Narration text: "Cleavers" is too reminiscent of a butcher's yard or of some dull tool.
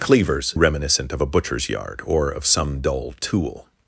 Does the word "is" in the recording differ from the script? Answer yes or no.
yes